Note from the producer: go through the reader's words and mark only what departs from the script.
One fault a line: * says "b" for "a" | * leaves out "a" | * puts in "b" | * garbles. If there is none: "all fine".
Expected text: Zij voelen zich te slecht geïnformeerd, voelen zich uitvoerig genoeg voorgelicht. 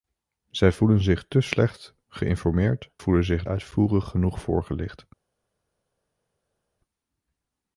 all fine